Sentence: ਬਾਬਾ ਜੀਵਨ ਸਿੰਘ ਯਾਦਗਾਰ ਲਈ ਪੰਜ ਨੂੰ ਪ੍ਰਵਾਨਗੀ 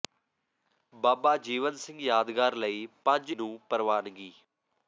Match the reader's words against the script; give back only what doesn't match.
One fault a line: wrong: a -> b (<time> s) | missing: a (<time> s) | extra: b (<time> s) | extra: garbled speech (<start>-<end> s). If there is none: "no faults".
no faults